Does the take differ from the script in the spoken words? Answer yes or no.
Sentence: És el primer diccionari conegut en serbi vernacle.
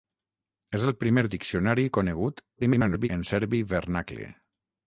yes